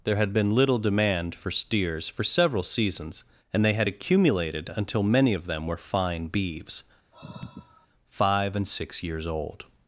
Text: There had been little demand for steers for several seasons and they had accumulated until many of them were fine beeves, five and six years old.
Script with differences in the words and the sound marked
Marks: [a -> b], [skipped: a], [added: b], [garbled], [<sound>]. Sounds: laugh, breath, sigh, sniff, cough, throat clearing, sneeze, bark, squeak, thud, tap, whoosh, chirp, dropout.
There had been little demand for steers for several seasons and they had accumulated until many of them were fine beeves, [sigh] five and six years old.